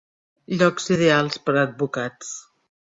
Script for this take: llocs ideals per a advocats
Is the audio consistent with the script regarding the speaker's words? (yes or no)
yes